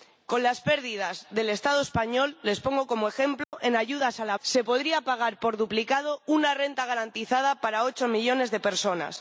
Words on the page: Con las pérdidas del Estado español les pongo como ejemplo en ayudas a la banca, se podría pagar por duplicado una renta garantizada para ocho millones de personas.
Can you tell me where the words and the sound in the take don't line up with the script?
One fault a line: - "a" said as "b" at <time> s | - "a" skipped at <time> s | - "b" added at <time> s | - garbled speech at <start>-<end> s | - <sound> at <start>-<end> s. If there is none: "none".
- dropout at 3.4-3.5 s
- "banca" skipped at 4.4 s